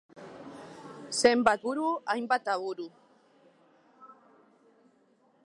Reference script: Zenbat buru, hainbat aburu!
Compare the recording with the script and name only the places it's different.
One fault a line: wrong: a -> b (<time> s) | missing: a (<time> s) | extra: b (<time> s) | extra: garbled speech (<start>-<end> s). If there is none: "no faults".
no faults